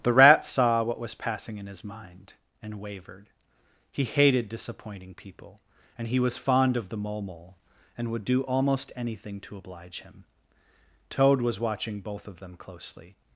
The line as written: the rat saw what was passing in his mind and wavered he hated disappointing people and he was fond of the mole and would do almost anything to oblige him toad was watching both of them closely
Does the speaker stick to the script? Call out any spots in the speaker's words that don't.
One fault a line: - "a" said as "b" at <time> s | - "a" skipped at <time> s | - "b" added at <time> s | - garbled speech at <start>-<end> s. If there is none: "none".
- "mole" added at 7.2 s